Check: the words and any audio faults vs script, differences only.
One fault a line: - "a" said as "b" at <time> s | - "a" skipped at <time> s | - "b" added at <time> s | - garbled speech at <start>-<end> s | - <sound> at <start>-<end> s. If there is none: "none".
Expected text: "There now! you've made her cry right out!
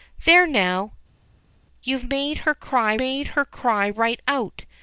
- "made her cry" added at 3.0 s